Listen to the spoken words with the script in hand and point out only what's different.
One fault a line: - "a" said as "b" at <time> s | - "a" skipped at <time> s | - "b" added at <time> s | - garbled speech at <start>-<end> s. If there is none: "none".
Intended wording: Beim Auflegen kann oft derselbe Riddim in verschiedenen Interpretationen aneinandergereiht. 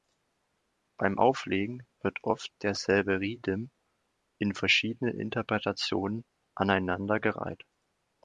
- "kann" said as "wird" at 2.0 s